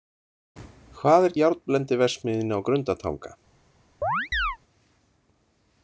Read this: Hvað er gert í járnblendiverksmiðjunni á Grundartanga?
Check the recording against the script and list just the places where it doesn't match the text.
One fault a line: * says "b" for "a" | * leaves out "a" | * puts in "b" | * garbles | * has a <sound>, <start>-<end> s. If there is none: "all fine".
* leaves out "gert"
* has a chirp, 4.0-4.6 s